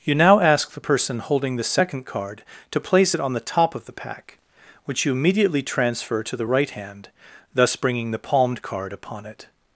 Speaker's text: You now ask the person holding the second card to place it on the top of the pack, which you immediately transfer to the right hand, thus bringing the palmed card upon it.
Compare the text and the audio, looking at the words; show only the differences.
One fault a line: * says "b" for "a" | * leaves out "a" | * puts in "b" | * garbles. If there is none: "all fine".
all fine